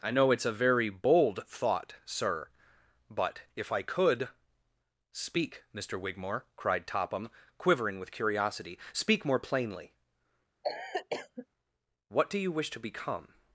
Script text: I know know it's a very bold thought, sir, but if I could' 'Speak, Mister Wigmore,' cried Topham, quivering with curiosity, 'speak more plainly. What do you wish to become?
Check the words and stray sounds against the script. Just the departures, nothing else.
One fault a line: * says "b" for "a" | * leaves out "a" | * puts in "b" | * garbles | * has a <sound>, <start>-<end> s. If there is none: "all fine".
* leaves out "know"
* has a cough, 10.6-11.5 s